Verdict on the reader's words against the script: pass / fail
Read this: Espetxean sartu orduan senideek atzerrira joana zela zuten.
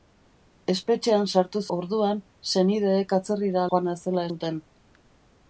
pass